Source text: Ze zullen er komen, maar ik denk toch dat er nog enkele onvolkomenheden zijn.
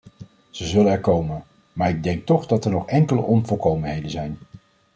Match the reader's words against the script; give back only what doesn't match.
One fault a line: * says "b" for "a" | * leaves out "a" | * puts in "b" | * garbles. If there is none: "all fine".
all fine